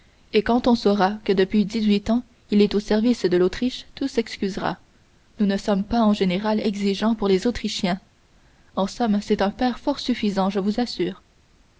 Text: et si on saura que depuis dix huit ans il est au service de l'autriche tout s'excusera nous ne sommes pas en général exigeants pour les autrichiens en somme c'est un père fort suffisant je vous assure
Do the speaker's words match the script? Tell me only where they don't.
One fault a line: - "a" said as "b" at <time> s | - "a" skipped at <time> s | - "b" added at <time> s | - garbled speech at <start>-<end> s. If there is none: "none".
- "si" said as "quand" at 0.4 s